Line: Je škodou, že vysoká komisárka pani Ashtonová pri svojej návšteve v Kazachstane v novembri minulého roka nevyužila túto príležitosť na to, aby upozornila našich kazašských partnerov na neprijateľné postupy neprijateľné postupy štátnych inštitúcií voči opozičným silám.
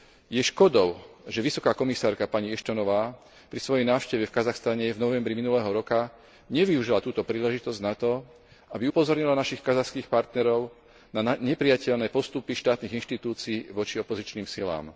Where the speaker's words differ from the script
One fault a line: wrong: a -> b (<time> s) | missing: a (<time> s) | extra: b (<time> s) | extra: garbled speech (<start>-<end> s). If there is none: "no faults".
missing: neprijateľné postupy (12.5 s)